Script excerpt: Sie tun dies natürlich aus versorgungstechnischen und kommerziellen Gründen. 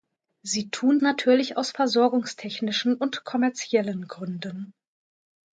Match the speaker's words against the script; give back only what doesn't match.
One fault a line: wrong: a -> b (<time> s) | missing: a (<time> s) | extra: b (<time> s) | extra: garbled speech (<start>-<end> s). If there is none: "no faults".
missing: dies (1.0 s)